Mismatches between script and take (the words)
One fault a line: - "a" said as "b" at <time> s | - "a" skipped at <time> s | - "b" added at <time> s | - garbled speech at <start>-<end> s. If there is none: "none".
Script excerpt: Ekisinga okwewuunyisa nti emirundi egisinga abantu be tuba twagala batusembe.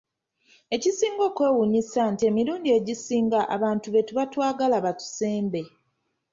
none